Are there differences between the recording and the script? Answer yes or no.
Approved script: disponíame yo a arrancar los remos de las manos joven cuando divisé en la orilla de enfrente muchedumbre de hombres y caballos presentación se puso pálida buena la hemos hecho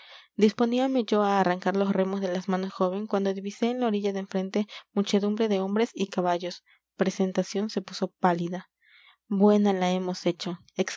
no